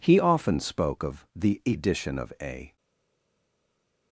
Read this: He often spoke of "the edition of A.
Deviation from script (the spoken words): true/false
false